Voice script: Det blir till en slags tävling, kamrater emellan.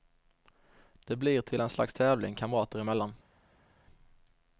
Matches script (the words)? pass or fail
pass